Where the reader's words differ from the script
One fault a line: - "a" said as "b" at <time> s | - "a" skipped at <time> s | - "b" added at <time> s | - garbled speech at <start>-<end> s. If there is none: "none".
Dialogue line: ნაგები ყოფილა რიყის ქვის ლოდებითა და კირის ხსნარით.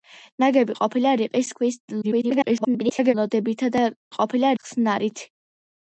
- garbled speech at 2.0-3.1 s
- "კირის" said as "ყოფილა" at 4.1 s